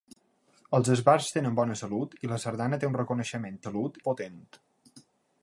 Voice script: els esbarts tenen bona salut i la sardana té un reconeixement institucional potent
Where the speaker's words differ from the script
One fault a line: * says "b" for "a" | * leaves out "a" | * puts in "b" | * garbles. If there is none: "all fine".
* says "salut" for "institucional"